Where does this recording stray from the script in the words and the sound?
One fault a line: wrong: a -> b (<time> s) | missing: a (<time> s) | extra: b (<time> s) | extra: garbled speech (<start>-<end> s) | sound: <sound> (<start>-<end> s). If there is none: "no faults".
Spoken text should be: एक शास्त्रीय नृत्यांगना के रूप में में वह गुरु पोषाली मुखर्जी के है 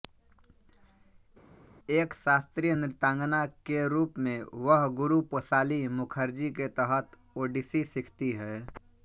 missing: में (4.4 s)
extra: तहत ओडिसी सीखती (6.8 s)